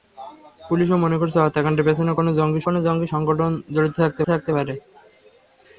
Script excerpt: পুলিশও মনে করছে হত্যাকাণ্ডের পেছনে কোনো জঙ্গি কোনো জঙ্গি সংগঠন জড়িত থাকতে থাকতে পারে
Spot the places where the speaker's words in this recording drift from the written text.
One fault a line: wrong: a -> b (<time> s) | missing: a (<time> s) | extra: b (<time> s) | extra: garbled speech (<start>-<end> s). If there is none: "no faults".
no faults